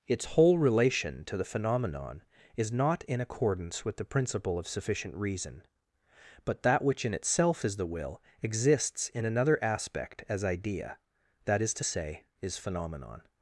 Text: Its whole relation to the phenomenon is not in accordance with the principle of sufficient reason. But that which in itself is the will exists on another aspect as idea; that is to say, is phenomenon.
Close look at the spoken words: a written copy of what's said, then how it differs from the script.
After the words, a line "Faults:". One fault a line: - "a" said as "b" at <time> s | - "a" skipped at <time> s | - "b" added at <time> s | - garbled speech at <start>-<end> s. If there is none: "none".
Its whole relation to the phenomenon is not in accordance with the principle of sufficient reason. But that which in itself is the will exists in another aspect as idea; that is to say, is phenomenon.
Faults:
- "on" said as "in" at 9.1 s